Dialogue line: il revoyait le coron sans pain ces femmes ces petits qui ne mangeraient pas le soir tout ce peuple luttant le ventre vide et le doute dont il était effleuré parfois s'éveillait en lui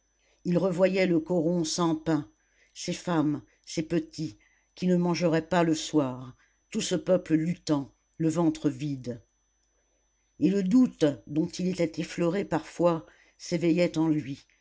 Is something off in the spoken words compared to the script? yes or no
no